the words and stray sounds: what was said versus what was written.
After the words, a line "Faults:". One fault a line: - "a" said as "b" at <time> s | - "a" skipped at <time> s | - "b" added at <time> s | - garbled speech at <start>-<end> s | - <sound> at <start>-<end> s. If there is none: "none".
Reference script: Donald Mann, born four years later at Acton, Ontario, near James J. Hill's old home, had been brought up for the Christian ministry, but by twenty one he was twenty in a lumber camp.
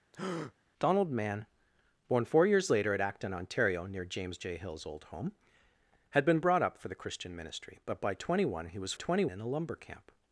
Donald Mann, born four years later at Acton, Ontario, near James J. Hill's old home, had been brought up for the Christian ministry, but by twenty one he was twenty in a lumber camp.
Faults:
- breath at 0.1-0.5 s